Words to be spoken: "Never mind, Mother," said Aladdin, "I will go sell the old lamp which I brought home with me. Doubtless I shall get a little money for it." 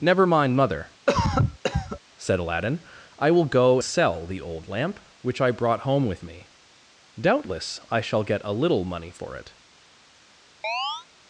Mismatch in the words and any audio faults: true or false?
true